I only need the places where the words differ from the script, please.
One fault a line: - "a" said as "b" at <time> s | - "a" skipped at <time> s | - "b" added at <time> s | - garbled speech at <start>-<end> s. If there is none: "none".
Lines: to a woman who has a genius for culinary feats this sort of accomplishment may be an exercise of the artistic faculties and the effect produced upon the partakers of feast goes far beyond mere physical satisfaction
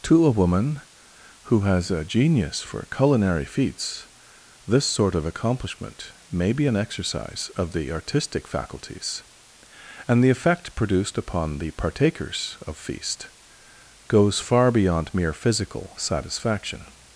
none